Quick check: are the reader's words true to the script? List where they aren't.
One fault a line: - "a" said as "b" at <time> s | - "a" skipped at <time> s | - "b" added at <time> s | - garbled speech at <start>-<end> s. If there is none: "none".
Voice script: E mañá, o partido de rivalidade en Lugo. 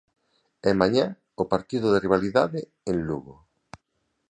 none